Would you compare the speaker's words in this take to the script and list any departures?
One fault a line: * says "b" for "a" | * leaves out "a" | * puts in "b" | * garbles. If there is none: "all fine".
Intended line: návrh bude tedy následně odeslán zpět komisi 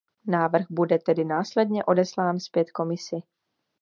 all fine